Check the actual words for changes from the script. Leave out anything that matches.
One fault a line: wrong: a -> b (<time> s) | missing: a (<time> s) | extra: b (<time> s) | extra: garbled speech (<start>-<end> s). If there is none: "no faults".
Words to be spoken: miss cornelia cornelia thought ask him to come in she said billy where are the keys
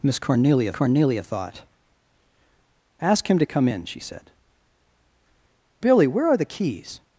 no faults